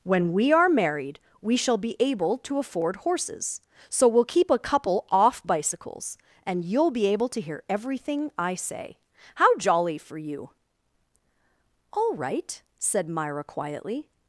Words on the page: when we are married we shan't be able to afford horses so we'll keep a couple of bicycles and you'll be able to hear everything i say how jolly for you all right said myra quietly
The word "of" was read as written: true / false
false